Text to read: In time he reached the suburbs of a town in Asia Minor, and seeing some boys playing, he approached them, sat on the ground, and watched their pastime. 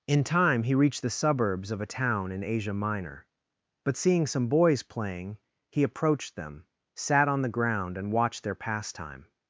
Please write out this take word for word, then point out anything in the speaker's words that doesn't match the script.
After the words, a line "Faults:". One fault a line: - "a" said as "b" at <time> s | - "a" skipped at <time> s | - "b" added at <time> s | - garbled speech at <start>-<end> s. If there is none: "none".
In time he reached the suburbs of a town in Asia Minor, but seeing some boys playing, he approached them, sat on the ground, and watched their pastime.
Faults:
- "and" said as "but" at 3.8 s